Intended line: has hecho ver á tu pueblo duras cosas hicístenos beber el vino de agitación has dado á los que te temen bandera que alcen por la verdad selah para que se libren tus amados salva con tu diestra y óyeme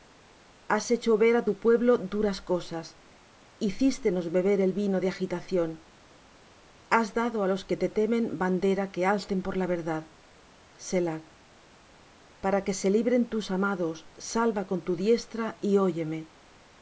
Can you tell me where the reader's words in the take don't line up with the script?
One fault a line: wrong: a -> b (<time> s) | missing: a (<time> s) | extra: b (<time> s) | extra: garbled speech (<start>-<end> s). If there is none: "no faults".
no faults